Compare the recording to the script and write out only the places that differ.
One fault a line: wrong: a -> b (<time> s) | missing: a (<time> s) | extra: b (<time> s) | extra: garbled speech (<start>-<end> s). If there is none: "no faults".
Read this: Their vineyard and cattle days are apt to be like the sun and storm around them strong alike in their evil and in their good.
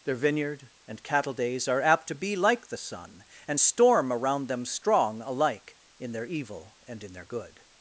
no faults